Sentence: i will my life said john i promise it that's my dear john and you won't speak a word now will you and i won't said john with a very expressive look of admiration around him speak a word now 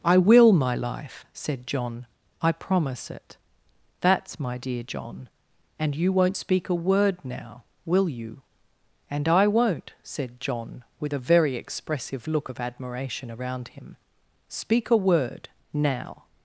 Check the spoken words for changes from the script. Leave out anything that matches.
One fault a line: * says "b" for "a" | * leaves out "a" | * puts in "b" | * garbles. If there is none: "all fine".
all fine